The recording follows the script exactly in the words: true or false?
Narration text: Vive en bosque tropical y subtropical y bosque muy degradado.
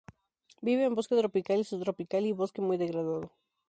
true